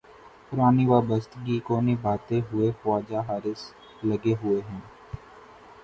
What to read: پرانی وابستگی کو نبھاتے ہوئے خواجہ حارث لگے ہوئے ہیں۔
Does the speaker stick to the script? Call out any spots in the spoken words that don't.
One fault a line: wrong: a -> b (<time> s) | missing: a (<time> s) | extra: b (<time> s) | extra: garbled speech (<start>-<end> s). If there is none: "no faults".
no faults